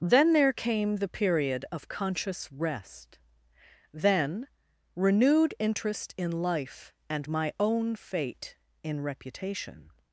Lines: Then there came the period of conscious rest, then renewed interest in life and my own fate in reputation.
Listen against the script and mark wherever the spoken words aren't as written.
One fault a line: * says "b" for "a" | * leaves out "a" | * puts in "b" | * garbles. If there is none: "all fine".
all fine